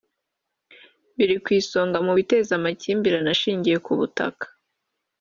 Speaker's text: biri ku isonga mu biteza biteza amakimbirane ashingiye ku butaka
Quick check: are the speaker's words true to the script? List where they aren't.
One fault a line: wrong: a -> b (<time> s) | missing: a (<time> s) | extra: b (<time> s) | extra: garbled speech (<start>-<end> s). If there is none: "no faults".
missing: biteza (2.5 s)